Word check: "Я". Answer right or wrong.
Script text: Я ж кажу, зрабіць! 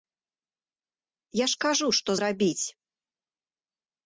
right